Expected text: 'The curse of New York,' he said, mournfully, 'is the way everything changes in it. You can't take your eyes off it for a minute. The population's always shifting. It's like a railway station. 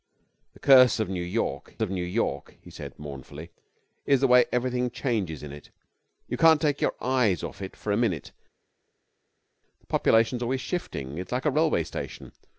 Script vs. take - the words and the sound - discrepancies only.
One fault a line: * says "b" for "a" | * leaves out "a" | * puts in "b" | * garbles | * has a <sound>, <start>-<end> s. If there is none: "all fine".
* puts in "of New York"